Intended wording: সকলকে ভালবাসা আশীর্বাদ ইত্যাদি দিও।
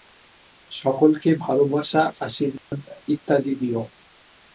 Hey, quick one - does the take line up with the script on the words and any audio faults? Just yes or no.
no